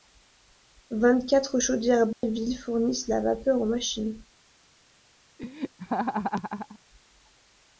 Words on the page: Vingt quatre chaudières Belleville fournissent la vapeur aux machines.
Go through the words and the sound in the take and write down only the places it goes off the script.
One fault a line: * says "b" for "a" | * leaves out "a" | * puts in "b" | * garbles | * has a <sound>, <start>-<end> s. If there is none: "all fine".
* has a dropout, 2.1-2.2 s
* has a laugh, 5.4-6.8 s